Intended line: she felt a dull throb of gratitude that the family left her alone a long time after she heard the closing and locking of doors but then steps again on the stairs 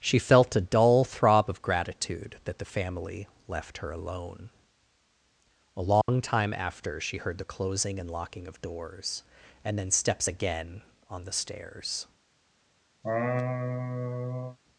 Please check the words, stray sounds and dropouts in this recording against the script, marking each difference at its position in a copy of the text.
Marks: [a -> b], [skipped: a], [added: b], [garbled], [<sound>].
she felt a dull throb of gratitude that the family left her alone a long [dropout] time after she heard the closing and locking of doors [but -> and] then steps again on the stairs [laugh]